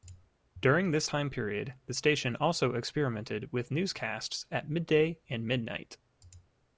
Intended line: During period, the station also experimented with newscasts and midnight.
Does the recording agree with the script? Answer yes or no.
no